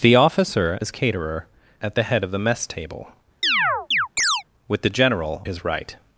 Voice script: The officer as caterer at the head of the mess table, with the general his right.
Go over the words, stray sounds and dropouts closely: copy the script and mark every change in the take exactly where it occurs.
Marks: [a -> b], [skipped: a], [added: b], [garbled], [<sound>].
The officer as caterer at the head of the mess table, [chirp] with the general his right.